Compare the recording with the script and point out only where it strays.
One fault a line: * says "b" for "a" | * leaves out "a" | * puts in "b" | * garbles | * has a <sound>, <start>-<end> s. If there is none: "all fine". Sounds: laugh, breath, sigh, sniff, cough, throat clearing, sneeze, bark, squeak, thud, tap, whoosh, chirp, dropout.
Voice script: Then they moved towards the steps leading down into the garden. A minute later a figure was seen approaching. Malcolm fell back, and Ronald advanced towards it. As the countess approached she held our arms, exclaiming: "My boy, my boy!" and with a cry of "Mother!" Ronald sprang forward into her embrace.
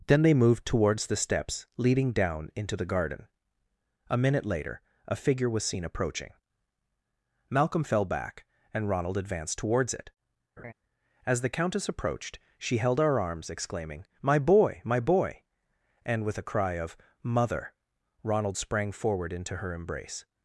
* has a laugh, 10.6-10.7 s